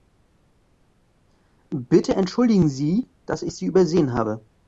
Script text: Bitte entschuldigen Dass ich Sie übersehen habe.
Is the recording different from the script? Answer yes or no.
yes